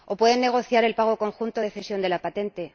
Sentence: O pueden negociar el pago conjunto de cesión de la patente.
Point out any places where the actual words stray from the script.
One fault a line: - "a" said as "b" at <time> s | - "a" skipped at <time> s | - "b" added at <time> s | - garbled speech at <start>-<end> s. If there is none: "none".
none